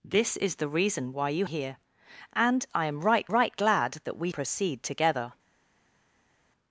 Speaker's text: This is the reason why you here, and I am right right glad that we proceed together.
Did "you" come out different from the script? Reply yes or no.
no